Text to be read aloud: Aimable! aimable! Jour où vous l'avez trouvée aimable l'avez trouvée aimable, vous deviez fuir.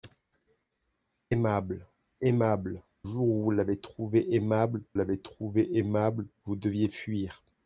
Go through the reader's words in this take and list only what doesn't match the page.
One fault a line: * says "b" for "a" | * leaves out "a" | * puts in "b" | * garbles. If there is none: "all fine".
all fine